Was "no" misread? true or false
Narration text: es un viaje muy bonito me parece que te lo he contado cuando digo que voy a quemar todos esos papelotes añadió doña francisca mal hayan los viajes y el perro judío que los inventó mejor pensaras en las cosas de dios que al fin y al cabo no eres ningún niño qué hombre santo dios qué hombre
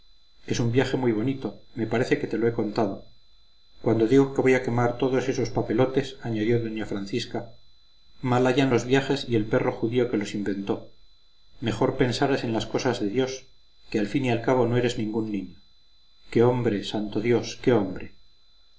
false